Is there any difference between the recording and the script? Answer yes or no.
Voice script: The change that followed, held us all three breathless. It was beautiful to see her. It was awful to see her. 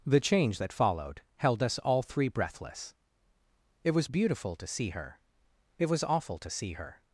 no